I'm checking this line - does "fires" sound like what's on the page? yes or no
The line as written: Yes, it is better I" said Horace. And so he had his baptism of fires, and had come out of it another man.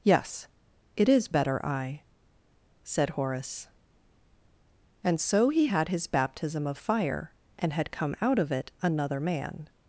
no